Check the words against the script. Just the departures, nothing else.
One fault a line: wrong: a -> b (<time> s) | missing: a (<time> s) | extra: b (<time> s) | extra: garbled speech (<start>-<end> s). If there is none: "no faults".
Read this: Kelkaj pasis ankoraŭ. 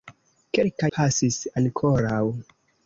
no faults